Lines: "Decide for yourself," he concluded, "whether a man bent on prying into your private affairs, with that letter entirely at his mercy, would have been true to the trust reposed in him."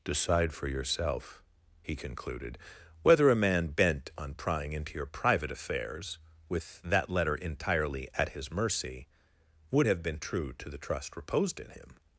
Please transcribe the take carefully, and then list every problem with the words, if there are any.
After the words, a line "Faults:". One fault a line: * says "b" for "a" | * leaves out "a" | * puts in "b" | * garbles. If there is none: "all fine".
"Decide for yourself," he concluded, "whether a man bent on prying into your private affairs, with that letter entirely at his mercy, would have been true to the trust reposed in him."
Faults:
all fine